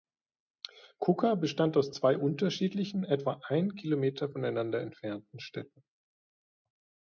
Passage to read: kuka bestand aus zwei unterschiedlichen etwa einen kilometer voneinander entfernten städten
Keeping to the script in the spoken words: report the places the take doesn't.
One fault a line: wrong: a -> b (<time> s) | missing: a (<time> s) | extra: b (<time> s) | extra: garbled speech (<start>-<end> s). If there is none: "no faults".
no faults